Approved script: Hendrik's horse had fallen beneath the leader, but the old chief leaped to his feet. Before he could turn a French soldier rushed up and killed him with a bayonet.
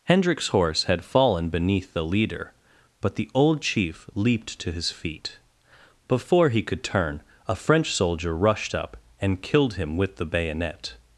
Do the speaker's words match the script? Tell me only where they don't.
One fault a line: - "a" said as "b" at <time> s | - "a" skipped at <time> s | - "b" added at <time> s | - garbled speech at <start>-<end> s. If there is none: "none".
- "a" said as "the" at 10.2 s